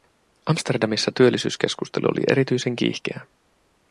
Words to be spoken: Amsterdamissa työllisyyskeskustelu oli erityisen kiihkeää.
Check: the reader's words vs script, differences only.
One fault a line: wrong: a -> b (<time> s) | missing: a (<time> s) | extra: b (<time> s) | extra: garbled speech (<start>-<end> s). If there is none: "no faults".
no faults